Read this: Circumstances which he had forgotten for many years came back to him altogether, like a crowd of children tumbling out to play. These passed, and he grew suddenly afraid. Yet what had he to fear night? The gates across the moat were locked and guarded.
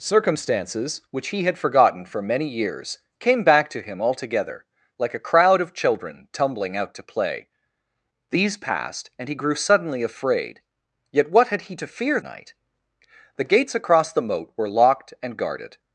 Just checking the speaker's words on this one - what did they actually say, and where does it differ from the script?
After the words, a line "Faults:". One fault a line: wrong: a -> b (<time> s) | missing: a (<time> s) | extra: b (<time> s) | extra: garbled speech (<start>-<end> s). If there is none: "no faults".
Circumstances which he had forgotten for many years came back to him altogether, like a crowd of children tumbling out to play. These passed, and he grew suddenly afraid. Yet what had he to fear night? The gates across the moat were locked and guarded.
Faults:
no faults